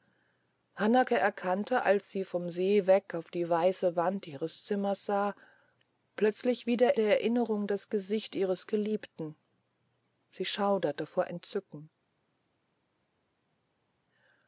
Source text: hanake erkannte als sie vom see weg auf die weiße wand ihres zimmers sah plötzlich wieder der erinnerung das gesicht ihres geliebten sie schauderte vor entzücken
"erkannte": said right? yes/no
yes